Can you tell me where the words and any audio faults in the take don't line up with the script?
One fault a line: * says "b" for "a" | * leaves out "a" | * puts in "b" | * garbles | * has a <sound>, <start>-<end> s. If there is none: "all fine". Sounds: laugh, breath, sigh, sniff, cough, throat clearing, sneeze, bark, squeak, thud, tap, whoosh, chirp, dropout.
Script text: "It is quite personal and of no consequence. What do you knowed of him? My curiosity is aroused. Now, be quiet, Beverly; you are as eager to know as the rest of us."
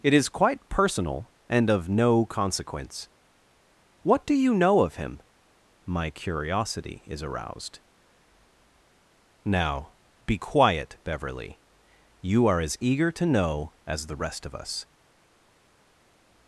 * says "know" for "knowed"